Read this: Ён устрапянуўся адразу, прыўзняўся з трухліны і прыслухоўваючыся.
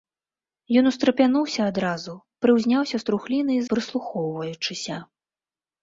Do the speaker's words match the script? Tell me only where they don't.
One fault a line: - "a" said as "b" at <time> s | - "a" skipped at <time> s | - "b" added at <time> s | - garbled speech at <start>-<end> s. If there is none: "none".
none